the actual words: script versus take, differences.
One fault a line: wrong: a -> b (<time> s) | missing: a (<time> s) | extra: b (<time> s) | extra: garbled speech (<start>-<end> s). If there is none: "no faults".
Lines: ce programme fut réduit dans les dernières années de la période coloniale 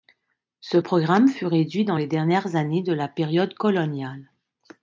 no faults